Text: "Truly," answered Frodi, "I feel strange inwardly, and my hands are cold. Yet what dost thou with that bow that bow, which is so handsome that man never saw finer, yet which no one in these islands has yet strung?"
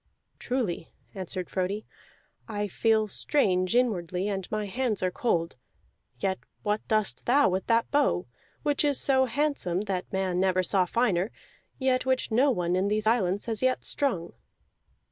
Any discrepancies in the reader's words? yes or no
yes